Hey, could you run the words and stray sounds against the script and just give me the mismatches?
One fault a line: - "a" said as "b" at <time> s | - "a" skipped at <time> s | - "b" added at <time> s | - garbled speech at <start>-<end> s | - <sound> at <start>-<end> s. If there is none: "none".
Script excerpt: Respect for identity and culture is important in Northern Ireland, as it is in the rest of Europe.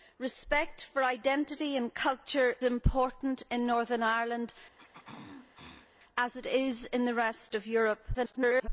- "is" skipped at 2.5 s
- throat clearing at 4.8-5.9 s
- garbled speech at 8.1-8.7 s